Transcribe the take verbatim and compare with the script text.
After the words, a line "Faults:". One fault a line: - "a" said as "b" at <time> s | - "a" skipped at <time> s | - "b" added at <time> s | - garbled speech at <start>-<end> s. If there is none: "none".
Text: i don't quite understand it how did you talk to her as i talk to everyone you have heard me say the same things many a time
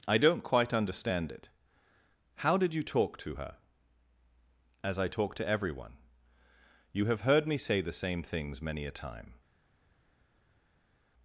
i don't quite understand it how did you talk to her as i talk to everyone you have heard me say the same things many a time
Faults:
none